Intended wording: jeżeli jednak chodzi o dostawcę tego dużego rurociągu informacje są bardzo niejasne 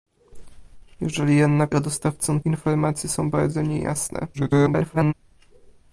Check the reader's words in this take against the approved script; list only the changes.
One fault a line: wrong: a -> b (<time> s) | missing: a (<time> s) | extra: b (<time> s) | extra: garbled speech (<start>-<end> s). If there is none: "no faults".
missing: chodzi (1.8 s)
missing: tego dużego rurociągu (2.4 s)
extra: garbled speech (4.3-5.1 s)